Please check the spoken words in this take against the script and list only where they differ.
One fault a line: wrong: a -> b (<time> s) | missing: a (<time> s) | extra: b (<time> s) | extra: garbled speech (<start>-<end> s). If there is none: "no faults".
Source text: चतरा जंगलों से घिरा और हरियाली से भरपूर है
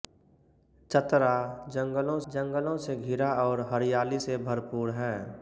extra: जंगलों (2.3 s)